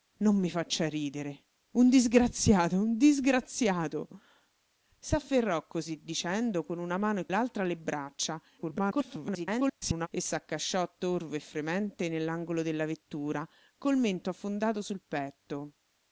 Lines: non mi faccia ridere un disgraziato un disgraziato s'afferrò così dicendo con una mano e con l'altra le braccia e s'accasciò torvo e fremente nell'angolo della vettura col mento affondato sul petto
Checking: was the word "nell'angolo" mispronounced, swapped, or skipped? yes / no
no